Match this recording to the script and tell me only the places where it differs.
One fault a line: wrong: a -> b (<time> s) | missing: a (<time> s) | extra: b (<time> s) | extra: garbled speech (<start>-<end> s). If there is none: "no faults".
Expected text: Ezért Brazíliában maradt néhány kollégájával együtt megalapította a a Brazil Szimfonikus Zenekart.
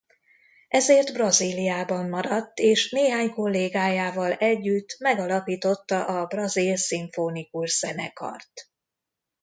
extra: és (2.6 s)
missing: a (6.2 s)